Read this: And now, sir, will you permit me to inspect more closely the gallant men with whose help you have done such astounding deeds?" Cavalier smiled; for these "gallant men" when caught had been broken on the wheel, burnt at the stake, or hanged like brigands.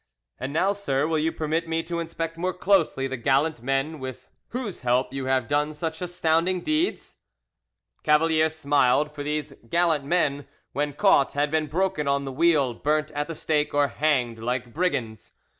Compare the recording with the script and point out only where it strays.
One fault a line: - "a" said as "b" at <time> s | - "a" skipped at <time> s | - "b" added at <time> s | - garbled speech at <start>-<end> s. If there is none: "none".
none